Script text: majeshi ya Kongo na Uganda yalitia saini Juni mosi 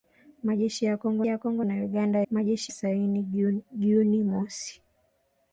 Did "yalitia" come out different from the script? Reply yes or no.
yes